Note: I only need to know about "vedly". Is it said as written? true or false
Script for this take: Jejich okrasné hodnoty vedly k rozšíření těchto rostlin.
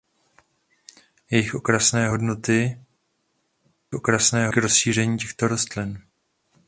false